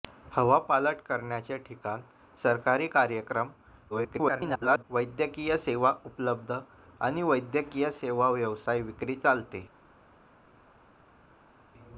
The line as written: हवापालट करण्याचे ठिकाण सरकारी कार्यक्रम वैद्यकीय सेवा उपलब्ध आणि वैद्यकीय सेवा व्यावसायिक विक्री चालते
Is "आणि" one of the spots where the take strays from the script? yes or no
no